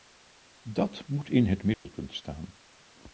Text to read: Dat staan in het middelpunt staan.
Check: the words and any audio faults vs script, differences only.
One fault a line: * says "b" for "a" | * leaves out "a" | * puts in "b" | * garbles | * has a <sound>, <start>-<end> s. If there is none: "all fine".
* says "moet" for "staan"
* has a dropout, 1.7-1.9 s